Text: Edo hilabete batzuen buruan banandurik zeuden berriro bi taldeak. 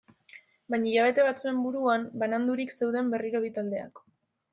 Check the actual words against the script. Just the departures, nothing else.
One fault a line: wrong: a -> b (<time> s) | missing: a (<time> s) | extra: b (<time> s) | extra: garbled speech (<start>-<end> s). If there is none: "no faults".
wrong: Edo -> Baina (0.7 s)